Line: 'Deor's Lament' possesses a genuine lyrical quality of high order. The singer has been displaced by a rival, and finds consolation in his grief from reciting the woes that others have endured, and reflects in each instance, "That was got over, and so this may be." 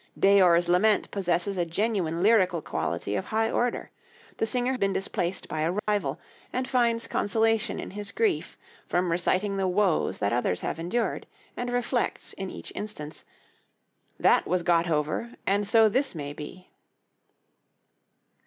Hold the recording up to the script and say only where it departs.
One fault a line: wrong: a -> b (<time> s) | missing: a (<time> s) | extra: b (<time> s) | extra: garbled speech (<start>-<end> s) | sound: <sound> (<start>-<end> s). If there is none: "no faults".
missing: has (4.7 s)
sound: dropout (5.8-5.9 s)